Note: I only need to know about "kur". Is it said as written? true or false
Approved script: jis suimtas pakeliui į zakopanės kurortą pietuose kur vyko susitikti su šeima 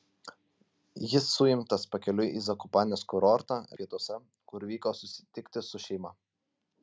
true